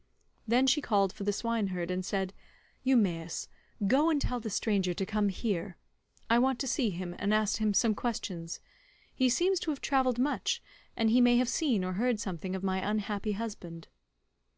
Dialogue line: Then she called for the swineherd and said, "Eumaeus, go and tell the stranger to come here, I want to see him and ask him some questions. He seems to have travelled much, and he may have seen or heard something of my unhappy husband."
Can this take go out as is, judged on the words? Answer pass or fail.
pass